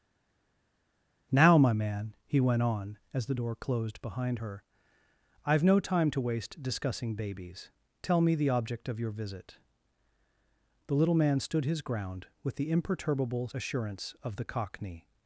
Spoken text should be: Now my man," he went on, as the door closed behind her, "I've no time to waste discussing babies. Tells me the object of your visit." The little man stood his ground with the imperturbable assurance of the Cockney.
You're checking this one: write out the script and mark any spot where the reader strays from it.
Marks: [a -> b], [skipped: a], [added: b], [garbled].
Now my man," he went on, as the door closed behind her, "I've no time to waste discussing babies. [Tells -> Tell] me the object of your visit." The little man stood his ground with the imperturbable assurance of the Cockney.